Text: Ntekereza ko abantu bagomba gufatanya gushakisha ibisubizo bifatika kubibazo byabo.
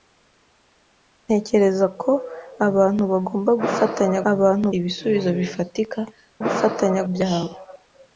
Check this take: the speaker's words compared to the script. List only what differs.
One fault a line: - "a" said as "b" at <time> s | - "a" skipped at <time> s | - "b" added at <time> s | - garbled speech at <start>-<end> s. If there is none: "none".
- "gushakisha" said as "abantu" at 4.3 s
- "kubibazo" said as "gufatanya" at 6.4 s